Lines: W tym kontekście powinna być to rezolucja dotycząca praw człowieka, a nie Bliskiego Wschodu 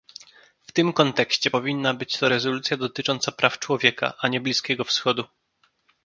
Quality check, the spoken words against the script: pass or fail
pass